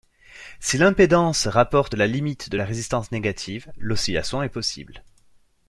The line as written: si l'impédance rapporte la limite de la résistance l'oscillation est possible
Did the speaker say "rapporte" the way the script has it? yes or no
yes